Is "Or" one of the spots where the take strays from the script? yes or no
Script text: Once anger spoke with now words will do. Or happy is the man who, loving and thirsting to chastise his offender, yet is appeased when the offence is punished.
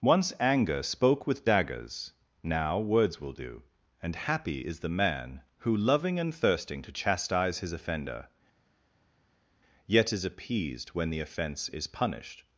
yes